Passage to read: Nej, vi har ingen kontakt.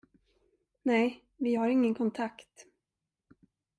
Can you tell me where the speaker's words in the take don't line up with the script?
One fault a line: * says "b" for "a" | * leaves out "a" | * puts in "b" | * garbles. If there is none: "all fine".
all fine